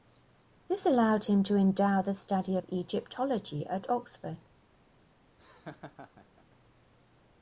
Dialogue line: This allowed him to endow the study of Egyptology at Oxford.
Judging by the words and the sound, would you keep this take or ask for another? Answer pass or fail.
fail